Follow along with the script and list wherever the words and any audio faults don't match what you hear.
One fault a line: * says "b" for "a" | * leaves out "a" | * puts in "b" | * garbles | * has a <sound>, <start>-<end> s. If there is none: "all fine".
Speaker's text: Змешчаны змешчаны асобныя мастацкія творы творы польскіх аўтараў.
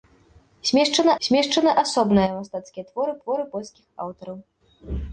all fine